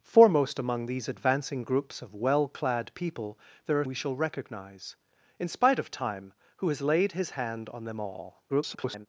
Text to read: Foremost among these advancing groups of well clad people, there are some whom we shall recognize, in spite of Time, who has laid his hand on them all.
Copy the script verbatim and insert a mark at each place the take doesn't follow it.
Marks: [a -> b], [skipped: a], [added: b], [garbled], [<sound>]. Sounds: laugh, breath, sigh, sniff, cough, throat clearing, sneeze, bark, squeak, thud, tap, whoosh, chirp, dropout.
Foremost among these advancing groups of well clad people, there are [skipped: some whom] we shall recognize, in spite of Time, who has laid his hand on them all. [garbled]